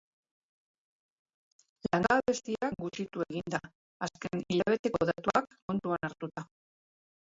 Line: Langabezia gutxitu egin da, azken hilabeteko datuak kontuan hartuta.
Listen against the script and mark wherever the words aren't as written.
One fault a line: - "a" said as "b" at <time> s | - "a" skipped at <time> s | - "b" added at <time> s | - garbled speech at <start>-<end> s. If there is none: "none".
none